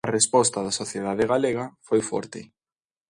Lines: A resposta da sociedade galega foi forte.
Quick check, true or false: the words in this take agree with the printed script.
true